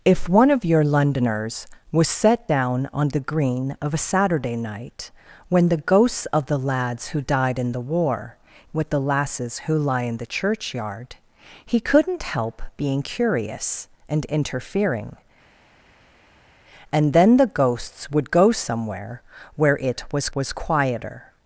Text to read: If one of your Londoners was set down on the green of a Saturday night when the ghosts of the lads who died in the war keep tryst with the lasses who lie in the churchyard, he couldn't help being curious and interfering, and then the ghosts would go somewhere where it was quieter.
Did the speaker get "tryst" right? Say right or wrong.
wrong